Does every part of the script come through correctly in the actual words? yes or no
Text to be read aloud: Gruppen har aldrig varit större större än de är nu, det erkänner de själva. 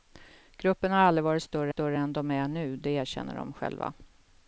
yes